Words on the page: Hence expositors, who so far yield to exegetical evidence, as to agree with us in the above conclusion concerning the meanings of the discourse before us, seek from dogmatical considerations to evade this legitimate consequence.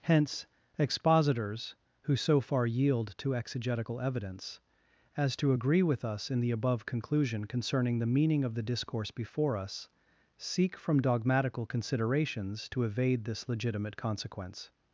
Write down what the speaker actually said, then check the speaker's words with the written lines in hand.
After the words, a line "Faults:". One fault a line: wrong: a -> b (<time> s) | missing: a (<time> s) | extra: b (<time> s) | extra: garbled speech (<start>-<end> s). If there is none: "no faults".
Hence expositors, who so far yield to exegetical evidence, as to agree with us in the above conclusion concerning the meaning of the discourse before us, seek from dogmatical considerations to evade this legitimate consequence.
Faults:
wrong: meanings -> meaning (8.1 s)